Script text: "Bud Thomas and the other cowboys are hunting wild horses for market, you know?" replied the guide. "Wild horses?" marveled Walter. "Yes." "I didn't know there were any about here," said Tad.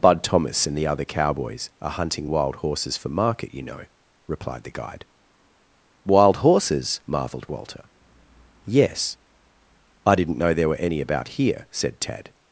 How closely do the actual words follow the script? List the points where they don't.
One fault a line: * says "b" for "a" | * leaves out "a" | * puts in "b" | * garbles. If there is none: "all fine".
all fine